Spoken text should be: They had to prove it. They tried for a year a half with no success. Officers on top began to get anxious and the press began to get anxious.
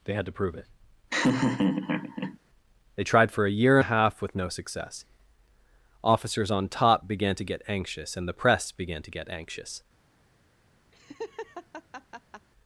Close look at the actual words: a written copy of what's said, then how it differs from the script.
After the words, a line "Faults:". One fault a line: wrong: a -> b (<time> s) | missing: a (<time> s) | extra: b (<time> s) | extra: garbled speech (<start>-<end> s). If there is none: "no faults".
They had to prove it. They tried for a year a half with no success. Officers on top began to get anxious and the press began to get anxious.
Faults:
no faults